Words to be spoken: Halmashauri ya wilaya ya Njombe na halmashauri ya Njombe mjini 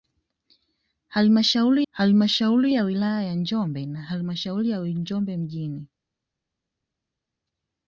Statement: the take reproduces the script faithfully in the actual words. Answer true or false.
false